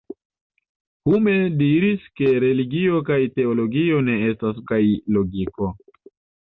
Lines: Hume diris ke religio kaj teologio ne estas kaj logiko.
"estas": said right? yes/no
yes